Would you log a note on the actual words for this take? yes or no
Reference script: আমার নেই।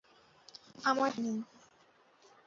no